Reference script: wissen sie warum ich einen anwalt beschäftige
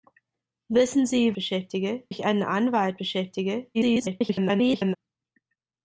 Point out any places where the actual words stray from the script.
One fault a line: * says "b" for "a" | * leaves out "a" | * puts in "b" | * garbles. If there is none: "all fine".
* says "beschäftige" for "warum"
* garbles